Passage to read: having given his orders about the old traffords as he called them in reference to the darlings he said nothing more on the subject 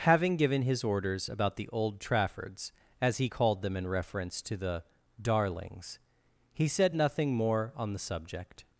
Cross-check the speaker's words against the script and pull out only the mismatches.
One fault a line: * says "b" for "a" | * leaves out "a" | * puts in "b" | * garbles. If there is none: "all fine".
all fine